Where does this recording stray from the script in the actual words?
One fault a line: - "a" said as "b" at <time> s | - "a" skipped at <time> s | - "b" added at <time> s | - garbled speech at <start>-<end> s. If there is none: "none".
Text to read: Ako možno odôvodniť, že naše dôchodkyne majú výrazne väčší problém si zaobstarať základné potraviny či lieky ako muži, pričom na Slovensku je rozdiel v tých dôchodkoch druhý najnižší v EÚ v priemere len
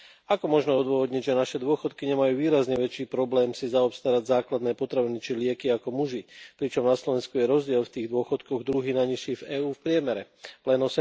none